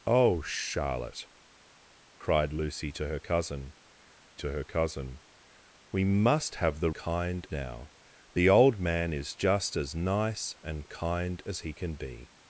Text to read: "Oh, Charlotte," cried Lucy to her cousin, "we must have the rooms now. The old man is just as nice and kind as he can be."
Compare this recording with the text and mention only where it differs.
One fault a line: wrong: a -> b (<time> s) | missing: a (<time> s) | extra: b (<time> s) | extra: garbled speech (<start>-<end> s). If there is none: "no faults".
extra: to her cousin (4.4 s)
wrong: rooms -> kind (6.9 s)